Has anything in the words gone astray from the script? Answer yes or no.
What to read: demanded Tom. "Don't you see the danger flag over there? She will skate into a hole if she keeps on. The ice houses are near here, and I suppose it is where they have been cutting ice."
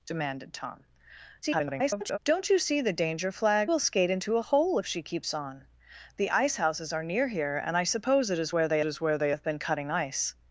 yes